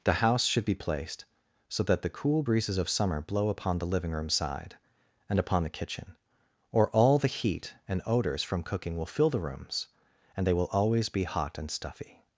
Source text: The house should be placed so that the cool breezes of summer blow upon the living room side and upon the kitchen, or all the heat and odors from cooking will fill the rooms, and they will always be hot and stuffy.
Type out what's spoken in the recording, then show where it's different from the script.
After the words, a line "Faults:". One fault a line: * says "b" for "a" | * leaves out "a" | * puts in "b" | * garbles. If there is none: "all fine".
The house should be placed so that the cool breezes of summer blow upon the living room side and upon the kitchen, or all the heat and odors from cooking will fill the rooms, and they will always be hot and stuffy.
Faults:
all fine